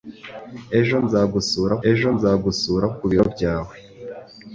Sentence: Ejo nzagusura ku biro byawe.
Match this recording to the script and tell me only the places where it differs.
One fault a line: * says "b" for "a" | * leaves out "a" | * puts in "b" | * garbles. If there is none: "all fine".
* puts in "ejo nzagusura"